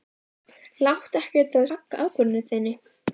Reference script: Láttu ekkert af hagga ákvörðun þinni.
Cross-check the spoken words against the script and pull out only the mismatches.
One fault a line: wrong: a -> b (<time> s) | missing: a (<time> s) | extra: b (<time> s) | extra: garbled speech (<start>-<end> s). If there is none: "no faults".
no faults